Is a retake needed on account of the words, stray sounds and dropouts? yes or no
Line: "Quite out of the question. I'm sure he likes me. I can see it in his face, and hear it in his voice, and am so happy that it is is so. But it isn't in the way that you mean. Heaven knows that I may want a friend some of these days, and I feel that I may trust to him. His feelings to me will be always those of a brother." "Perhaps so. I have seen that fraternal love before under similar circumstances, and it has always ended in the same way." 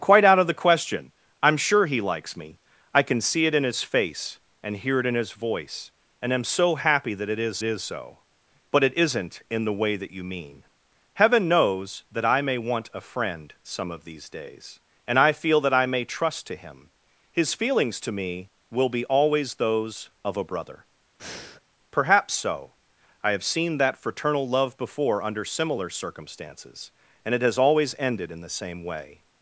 yes